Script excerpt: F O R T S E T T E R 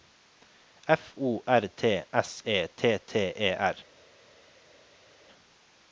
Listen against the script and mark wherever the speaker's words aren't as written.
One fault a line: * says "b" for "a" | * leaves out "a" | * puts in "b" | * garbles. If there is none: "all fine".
all fine